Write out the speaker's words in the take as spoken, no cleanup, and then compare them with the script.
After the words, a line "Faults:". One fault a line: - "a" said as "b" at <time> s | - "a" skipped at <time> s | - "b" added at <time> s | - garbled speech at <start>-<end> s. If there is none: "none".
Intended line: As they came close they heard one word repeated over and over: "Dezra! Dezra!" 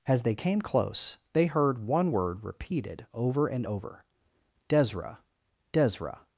As they came close they heard one word repeated over and over: "Dezra! Dezra!"
Faults:
none